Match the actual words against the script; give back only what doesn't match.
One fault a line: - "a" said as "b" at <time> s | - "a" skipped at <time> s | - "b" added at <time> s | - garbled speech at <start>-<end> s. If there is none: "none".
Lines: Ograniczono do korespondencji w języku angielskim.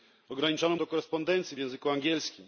none